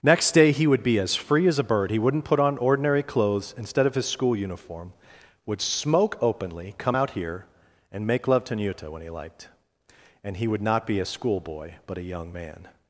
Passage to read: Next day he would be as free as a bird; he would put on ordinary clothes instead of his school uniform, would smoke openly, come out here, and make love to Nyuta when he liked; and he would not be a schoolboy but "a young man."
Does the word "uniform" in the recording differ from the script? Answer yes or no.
no